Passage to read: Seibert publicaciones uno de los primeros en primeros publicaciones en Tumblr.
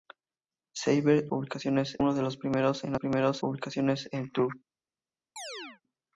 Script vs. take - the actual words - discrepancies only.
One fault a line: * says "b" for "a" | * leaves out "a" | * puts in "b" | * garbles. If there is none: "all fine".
all fine